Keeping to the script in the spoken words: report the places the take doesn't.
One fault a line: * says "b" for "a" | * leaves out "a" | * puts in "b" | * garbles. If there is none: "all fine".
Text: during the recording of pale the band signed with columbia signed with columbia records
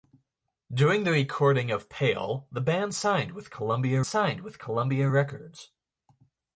all fine